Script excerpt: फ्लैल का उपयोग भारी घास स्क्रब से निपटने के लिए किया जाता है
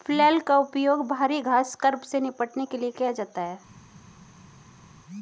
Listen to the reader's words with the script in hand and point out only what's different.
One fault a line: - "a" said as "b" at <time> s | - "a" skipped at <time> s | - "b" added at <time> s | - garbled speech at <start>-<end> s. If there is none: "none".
none